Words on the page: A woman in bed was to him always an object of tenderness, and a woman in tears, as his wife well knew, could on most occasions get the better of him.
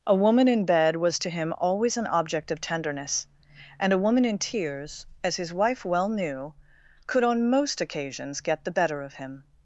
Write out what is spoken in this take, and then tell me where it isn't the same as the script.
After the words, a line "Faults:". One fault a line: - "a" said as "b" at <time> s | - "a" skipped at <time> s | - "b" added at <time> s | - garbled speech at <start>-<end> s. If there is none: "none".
A woman in bed was to him always an object of tenderness, and a woman in tears, as his wife well knew, could on most occasions get the better of him.
Faults:
none